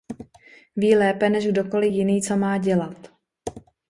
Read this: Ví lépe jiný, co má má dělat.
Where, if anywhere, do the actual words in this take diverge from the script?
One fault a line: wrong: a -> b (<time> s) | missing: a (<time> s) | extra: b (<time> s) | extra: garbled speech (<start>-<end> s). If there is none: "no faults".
extra: než kdokoli (1.3 s)
missing: má (2.6 s)